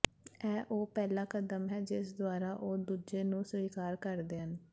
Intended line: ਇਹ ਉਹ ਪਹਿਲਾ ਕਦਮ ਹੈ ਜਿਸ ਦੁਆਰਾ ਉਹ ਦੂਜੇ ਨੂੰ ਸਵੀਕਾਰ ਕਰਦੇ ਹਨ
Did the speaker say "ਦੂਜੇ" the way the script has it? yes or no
yes